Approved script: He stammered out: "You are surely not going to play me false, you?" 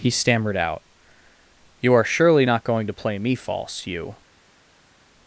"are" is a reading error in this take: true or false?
false